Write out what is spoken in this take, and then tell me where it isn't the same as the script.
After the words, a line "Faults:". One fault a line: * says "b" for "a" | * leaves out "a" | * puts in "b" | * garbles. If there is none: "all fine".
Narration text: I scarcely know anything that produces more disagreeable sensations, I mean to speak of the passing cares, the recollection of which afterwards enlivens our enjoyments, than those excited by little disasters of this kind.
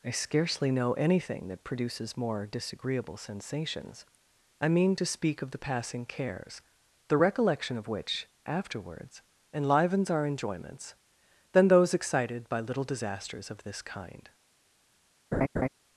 I scarcely know anything that produces more disagreeable sensations, I mean to speak of the passing cares, the recollection of which afterwards enlivens our enjoyments, than those excited by little disasters of this kind.
Faults:
all fine